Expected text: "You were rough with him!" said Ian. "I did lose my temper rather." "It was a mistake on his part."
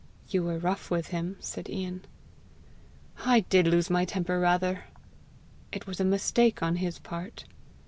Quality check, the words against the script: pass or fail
pass